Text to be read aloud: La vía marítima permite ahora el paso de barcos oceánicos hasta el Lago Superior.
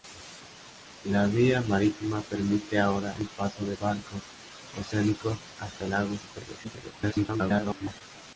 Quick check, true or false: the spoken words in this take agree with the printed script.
false